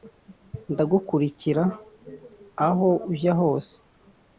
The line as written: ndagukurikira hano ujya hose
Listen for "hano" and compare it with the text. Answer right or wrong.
wrong